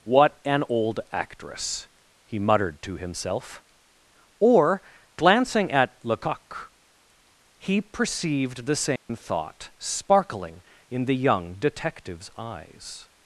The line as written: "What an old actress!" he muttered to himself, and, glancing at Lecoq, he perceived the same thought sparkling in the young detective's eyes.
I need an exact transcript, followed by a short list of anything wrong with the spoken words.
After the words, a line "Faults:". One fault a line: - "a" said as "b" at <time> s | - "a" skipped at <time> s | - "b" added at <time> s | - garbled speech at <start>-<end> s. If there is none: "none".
"What an old actress!" he muttered to himself, or, glancing at Lecoq, he perceived the same thought sparkling in the young detective's eyes.
Faults:
- "and" said as "or" at 4.4 s